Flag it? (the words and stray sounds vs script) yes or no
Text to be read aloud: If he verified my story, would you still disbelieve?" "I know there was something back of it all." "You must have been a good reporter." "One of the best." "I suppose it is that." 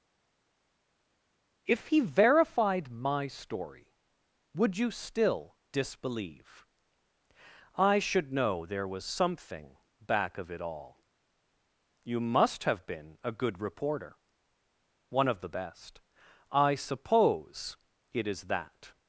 yes